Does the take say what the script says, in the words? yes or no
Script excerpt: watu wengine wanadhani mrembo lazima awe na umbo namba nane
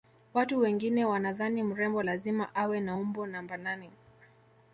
yes